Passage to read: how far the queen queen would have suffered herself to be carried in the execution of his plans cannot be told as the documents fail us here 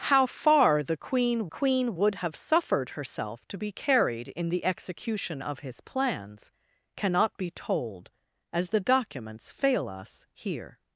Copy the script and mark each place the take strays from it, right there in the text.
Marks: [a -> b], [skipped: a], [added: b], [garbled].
how far the queen queen would have suffered herself to be carried in the execution of his plans cannot be told as the documents fail us here